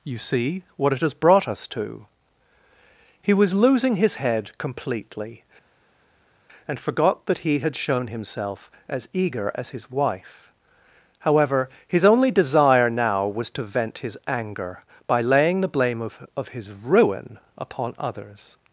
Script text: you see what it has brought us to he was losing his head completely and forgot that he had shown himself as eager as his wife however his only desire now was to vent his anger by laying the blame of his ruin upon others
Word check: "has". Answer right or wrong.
right